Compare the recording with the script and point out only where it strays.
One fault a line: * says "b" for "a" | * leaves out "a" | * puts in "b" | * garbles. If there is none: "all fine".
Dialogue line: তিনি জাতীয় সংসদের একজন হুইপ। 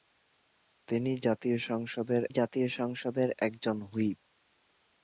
* puts in "জাতীয় সংসদের"